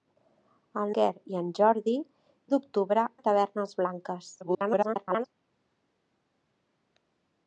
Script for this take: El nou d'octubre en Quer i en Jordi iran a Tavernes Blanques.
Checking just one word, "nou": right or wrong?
wrong